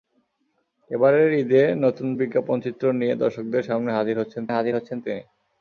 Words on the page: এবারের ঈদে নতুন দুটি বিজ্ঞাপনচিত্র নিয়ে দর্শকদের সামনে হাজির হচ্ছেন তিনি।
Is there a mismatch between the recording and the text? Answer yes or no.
yes